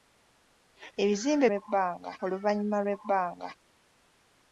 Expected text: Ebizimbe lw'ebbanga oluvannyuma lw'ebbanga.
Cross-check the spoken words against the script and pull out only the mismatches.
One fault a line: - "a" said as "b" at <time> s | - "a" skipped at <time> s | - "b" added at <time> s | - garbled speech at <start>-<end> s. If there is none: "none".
none